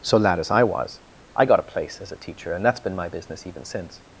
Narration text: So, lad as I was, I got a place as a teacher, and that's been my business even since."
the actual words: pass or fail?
pass